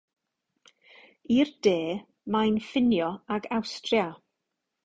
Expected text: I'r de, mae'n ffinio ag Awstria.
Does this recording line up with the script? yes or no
yes